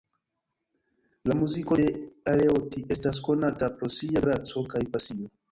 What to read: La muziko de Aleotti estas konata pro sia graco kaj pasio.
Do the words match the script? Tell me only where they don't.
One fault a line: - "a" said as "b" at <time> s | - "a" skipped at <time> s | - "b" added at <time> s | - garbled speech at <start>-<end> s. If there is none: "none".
none